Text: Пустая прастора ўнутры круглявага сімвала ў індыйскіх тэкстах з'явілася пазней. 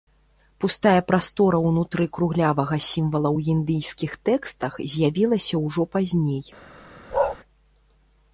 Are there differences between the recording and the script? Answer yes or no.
yes